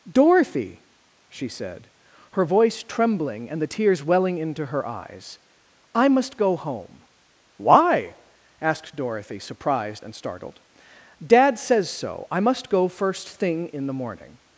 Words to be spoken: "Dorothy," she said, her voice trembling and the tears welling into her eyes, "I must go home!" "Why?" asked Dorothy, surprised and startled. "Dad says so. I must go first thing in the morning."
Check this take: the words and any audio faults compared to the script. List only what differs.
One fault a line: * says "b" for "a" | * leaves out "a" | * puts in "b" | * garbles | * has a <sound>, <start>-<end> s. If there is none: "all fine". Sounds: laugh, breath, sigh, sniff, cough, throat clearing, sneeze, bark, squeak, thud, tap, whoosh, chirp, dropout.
all fine